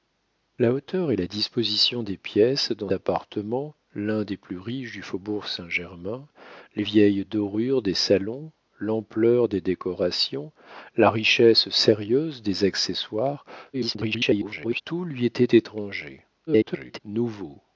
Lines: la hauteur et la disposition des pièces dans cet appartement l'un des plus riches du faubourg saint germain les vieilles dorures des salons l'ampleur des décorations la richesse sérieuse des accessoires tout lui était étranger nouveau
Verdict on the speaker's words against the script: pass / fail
fail